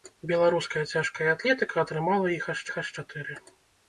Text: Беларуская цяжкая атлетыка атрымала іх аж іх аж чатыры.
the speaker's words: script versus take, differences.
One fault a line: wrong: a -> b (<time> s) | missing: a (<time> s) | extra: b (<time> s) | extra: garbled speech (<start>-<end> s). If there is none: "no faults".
no faults